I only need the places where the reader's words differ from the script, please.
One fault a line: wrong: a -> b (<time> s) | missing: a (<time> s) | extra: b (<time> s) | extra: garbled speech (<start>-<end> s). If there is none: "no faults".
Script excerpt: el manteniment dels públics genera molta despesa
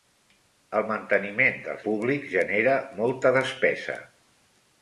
no faults